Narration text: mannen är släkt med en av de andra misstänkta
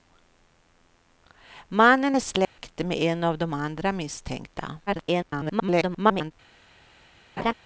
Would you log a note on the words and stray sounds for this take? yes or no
yes